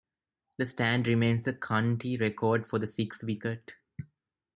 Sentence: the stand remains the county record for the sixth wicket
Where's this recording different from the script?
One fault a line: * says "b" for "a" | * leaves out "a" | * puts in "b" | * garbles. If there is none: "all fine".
all fine